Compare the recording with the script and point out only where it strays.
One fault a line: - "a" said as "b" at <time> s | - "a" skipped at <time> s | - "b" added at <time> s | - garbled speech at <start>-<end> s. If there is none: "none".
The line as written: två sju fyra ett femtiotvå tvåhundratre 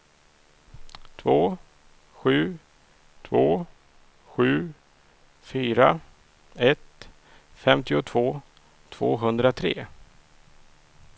- "två sju" added at 3.2 s